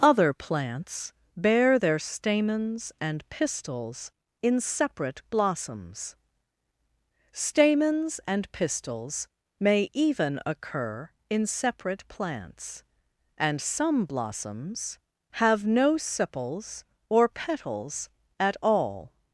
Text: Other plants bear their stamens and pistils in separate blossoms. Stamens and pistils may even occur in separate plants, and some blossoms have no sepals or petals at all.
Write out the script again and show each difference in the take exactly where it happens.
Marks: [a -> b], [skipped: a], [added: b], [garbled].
Other plants bear their stamens and pistils in separate blossoms. Stamens and pistils may even occur in separate plants, and some blossoms have no sepals or petals at all.